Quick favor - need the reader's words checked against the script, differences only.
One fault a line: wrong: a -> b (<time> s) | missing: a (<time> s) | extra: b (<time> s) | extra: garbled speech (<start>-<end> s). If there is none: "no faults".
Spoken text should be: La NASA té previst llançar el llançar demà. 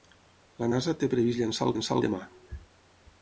no faults